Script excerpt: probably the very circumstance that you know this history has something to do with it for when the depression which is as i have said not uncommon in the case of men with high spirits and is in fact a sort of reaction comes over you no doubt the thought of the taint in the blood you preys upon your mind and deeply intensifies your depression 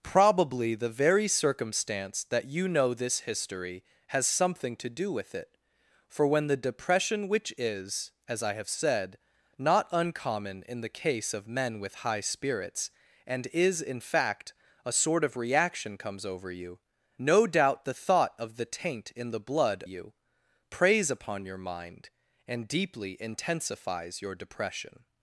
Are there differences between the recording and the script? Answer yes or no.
no